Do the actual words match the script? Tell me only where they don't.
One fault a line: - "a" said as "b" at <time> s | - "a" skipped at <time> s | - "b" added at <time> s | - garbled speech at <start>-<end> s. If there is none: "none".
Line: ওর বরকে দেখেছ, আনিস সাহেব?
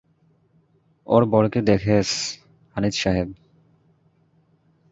none